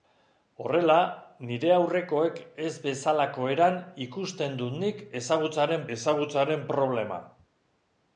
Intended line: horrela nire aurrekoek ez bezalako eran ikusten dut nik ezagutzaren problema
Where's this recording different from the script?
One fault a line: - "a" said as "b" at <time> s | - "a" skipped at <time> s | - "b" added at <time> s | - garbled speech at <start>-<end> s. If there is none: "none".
- "ezagutzaren" added at 6.0 s